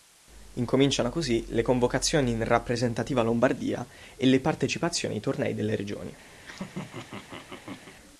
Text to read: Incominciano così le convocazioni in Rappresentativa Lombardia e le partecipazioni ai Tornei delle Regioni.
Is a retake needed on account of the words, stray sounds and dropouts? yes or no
yes